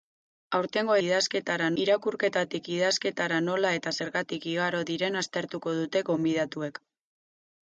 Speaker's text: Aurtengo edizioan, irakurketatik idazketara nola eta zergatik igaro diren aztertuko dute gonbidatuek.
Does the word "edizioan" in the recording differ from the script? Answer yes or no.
yes